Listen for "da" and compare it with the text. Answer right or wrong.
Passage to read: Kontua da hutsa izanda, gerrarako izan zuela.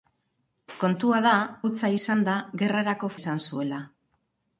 right